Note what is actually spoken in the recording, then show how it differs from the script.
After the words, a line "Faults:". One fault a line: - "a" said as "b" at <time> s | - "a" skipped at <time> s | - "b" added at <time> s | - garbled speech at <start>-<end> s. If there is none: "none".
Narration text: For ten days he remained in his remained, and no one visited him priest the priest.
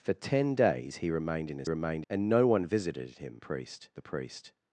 For ten days he remained in his remained, and no one visited him priest the priest.
Faults:
none